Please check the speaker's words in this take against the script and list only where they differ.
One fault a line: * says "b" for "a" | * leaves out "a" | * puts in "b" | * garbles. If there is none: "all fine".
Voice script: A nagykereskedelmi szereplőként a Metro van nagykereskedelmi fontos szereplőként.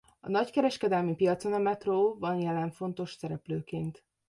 * says "piacon" for "szereplőként"
* says "jelen" for "nagykereskedelmi"